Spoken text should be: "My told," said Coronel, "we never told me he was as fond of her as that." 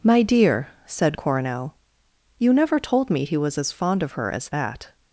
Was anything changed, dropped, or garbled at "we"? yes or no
yes